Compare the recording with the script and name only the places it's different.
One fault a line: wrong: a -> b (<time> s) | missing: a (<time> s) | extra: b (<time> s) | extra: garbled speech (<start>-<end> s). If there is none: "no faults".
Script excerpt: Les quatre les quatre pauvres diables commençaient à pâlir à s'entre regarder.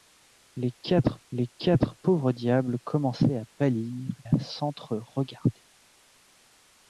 no faults